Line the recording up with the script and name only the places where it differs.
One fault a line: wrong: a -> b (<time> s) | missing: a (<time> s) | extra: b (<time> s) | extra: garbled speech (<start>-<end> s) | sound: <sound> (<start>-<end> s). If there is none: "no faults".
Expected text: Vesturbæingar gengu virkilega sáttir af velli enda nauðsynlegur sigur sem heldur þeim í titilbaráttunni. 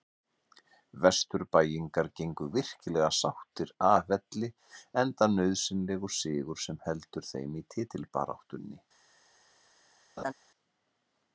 sound: laugh (10.2-10.3 s)